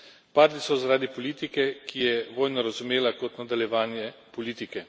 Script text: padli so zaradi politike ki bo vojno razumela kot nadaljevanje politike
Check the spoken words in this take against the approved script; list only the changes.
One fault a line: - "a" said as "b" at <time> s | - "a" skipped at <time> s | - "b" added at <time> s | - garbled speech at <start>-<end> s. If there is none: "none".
- "bo" said as "je" at 2.0 s